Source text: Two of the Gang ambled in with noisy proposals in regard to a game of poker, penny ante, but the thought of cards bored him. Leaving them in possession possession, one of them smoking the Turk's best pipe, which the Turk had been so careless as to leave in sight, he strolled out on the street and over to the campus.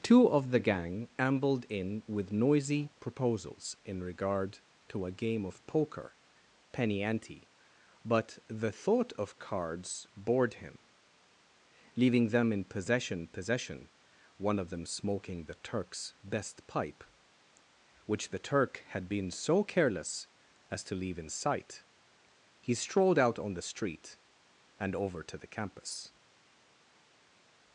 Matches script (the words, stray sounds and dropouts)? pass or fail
pass